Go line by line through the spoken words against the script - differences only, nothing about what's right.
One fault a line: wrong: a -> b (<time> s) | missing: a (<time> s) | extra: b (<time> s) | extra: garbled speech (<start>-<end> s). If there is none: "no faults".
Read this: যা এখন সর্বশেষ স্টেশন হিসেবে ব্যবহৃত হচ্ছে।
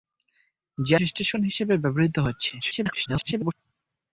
missing: এখন সর্বশেষ (1.0 s)
extra: garbled speech (2.6-3.5 s)